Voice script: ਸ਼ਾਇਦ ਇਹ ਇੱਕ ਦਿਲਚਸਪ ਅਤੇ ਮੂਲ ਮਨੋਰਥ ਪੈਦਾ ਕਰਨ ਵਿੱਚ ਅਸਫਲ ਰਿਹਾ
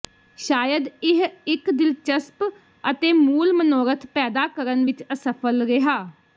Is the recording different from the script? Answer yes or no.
no